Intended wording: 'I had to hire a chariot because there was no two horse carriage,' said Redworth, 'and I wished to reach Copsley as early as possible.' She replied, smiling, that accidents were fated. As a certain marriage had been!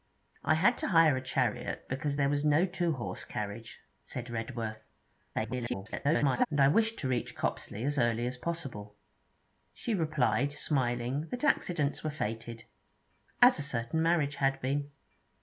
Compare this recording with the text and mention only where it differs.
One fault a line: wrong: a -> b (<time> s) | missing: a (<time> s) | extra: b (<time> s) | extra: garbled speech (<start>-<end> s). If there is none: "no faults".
extra: garbled speech (5.3-6.5 s)